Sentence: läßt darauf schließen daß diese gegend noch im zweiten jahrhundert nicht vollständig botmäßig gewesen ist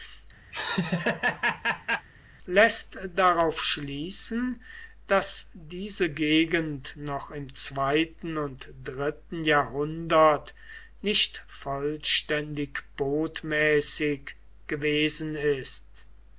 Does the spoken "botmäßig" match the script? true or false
true